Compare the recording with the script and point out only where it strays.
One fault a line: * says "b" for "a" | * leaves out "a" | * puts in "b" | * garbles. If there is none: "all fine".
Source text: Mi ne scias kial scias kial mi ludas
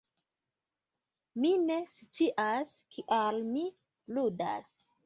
* leaves out "scias kial"